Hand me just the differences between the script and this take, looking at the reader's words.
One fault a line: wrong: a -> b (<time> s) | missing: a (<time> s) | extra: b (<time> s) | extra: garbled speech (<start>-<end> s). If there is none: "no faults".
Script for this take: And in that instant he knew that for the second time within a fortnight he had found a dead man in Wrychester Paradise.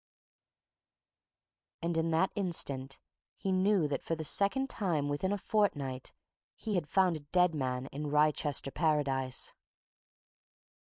no faults